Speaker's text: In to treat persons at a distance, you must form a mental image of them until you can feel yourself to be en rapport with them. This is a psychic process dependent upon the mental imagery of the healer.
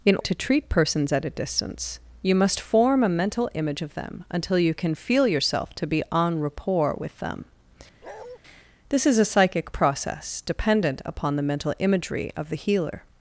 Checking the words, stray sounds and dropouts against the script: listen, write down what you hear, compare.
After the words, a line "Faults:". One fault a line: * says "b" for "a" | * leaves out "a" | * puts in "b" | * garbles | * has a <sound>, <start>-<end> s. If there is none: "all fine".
In to treat persons at a distance, you must form a mental image of them until you can feel yourself to be en rapport with them. This is a psychic process dependent upon the mental imagery of the healer.
Faults:
* has a bark, 8.0-8.4 s